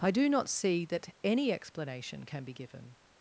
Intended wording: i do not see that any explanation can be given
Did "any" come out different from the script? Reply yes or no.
no